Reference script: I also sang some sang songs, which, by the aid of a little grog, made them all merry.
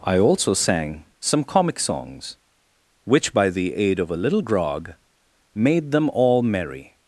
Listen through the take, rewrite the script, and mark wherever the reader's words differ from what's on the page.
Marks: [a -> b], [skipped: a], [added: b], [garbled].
I also sang some [sang -> comic] songs, which, by the aid of a little grog, made them all merry.